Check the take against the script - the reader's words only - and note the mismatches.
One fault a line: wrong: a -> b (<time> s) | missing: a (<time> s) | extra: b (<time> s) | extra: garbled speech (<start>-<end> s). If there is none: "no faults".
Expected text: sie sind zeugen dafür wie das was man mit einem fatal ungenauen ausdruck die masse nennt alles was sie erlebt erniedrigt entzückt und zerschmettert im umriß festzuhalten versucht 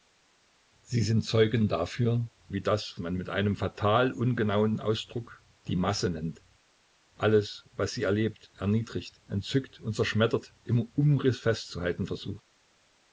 missing: was (3.0 s)